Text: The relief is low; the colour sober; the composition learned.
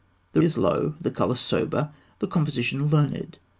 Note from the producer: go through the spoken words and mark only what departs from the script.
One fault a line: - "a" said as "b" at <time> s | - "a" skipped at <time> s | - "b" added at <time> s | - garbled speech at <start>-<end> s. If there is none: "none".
- "relief" skipped at 0.4 s